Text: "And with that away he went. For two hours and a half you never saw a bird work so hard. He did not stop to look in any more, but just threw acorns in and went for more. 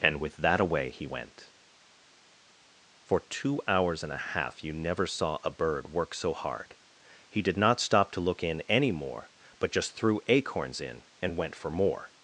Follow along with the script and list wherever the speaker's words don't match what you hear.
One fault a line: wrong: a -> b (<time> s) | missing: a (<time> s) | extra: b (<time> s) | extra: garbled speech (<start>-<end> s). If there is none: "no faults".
no faults